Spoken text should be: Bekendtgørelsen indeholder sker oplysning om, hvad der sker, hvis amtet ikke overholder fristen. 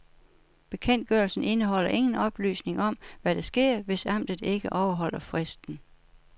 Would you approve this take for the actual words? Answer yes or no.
no